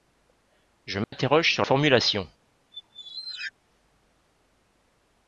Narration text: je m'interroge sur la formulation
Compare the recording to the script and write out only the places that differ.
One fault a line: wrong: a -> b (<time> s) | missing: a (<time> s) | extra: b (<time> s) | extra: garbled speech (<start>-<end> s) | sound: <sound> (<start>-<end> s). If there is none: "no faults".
sound: dropout (1.0-1.1 s)
missing: la (1.6 s)
sound: squeak (2.7-3.5 s)